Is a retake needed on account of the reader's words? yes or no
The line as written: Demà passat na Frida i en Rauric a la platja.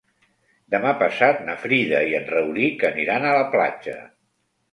yes